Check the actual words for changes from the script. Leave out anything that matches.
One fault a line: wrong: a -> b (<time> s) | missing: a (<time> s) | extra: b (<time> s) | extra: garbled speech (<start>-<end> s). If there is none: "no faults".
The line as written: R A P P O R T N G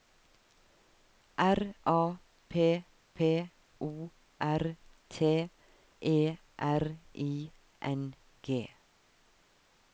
extra: E R I (6.0 s)